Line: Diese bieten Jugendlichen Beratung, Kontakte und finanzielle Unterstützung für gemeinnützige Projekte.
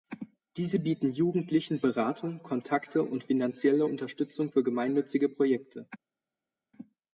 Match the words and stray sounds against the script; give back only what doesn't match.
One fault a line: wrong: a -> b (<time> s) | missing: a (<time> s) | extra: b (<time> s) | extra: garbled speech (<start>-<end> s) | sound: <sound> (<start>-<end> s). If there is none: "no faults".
no faults